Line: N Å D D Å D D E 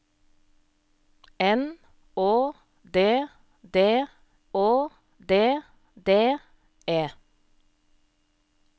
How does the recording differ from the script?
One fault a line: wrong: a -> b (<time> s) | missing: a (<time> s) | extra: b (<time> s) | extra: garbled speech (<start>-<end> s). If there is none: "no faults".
no faults